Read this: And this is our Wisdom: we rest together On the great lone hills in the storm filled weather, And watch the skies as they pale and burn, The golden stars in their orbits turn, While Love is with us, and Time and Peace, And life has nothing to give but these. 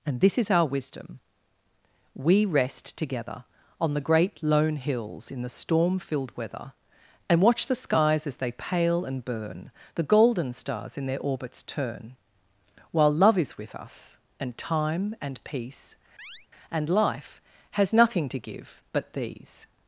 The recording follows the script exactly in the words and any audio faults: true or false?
false